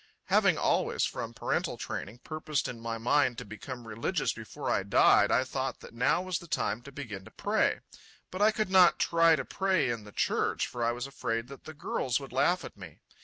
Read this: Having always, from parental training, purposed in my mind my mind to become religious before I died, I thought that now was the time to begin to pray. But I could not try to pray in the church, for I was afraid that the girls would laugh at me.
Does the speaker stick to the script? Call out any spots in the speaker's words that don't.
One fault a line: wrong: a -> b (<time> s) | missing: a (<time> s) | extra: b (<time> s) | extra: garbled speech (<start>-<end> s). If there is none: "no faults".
missing: my mind (3.4 s)